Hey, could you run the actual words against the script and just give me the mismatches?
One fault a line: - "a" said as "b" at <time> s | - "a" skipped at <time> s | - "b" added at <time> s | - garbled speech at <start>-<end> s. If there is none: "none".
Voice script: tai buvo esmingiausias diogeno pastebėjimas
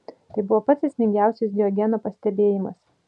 - "pats" added at 0.7 s